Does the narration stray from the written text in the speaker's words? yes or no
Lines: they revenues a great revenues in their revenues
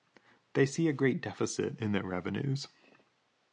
yes